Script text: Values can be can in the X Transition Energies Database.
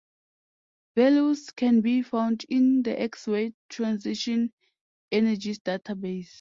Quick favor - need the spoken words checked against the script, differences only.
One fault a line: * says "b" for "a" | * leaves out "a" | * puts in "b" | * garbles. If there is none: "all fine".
* says "found" for "can"
* puts in "Ray"